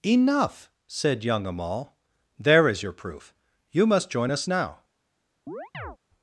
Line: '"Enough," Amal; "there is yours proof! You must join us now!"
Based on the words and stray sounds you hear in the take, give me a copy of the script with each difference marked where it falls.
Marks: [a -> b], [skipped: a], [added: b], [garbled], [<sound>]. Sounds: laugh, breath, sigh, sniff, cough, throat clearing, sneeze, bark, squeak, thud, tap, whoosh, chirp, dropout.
'"Enough," [added: said young] Amal; "there is [yours -> your] proof! You must join us now!" [chirp]